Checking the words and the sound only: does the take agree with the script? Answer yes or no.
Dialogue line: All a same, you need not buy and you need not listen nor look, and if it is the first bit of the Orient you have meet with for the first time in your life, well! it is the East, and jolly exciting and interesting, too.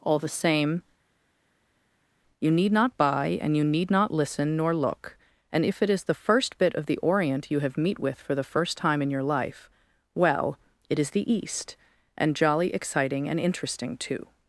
no